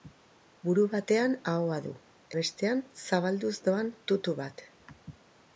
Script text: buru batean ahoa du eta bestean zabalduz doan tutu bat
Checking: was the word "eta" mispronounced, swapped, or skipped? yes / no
yes